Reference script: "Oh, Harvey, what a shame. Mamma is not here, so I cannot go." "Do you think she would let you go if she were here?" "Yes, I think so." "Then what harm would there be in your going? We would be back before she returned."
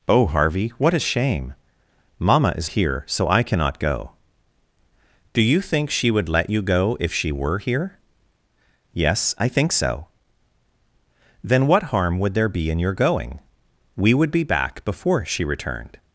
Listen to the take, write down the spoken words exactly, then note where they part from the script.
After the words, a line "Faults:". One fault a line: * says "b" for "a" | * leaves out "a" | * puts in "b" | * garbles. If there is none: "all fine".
"Oh, Harvey, what a shame. Mamma is here, so I cannot go." "Do you think she would let you go if she were here?" "Yes, I think so." "Then what harm would there be in your going? We would be back before she returned."
Faults:
* leaves out "not"